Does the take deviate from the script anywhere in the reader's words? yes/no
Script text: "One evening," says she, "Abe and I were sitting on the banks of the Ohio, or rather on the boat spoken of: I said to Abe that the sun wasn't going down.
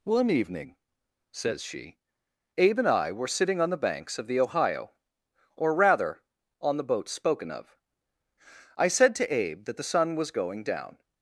yes